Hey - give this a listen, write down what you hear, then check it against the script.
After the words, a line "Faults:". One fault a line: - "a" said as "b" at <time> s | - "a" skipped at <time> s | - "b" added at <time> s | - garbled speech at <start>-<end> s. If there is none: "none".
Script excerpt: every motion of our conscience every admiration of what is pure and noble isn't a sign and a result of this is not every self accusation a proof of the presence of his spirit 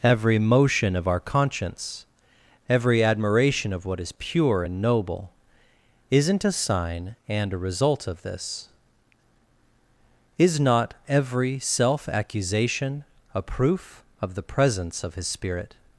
every motion of our conscience every admiration of what is pure and noble isn't a sign and a result of this is not every self accusation a proof of the presence of his spirit
Faults:
none